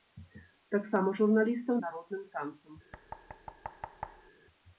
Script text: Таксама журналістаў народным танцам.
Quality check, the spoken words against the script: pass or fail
pass